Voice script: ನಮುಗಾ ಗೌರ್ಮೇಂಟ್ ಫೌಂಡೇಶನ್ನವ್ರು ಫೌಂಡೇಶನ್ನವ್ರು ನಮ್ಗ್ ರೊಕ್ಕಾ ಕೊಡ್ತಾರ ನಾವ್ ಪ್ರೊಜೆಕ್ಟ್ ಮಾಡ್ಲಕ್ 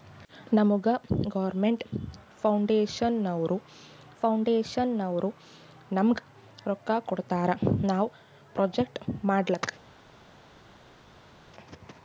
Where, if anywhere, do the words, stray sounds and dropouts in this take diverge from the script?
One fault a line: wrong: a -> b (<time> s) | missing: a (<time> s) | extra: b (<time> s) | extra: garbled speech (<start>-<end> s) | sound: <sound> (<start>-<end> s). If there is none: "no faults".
no faults